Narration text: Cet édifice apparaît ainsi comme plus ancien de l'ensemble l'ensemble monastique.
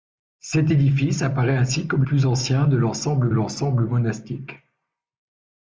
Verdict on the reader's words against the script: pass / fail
pass